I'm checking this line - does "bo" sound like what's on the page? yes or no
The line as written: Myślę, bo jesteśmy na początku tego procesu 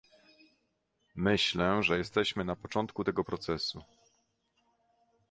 no